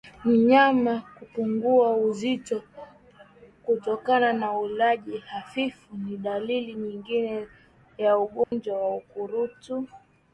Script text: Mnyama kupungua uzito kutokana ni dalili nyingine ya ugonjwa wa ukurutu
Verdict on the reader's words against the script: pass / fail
fail